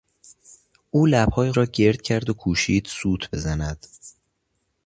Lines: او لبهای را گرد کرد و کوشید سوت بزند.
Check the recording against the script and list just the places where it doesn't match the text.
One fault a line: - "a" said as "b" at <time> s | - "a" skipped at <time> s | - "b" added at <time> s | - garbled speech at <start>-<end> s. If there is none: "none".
none